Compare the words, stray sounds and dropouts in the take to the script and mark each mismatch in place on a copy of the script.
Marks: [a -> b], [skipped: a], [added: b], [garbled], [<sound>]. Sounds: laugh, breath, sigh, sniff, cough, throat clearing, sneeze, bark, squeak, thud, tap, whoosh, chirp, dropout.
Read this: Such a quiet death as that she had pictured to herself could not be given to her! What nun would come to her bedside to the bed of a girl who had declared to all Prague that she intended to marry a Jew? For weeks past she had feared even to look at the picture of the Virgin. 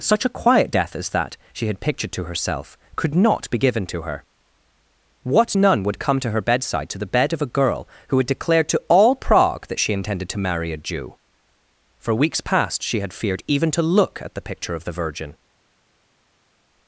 Such a quiet death as that she had pictured to herself could not be given to her! What nun would come to her bedside to the bed of a girl who had declared to all Prague that she intended to marry a Jew? For weeks past she had feared even to look at the picture of the Virgin.